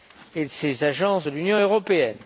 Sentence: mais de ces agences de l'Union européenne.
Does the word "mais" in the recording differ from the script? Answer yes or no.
yes